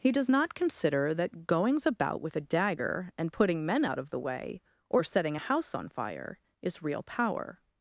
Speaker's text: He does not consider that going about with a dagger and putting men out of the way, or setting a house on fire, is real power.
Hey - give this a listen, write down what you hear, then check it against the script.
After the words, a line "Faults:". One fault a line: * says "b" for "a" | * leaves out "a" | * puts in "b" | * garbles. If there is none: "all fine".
He does not consider that goings about with a dagger and putting men out of the way, or setting a house on fire, is real power.
Faults:
* says "goings" for "going"